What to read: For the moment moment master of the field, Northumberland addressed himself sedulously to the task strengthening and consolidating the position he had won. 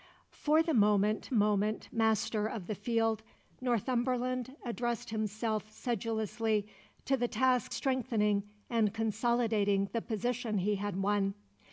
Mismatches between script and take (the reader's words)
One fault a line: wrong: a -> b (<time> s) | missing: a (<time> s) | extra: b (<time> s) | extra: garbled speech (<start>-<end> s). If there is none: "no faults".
no faults